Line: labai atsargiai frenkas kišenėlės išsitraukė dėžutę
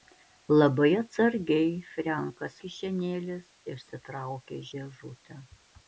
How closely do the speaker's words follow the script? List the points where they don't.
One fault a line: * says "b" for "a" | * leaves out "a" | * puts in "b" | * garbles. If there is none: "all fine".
all fine